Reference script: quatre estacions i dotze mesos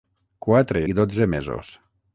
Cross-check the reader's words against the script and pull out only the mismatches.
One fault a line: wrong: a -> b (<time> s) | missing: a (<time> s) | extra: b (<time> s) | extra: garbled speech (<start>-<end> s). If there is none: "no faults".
missing: estacions (0.8 s)